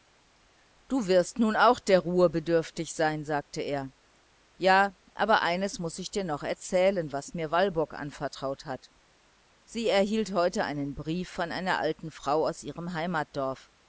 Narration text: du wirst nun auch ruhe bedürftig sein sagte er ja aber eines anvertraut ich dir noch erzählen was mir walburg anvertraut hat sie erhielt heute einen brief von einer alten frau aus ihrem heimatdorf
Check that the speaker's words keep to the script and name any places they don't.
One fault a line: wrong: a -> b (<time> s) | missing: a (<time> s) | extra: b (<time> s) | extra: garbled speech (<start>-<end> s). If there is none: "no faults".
extra: der (1.8 s)
wrong: anvertraut -> muß (5.8 s)